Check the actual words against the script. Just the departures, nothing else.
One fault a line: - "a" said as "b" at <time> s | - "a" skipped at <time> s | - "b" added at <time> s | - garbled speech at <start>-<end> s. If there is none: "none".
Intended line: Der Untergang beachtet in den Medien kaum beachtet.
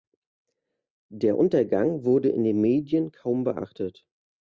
- "beachtet" said as "wurde" at 2.1 s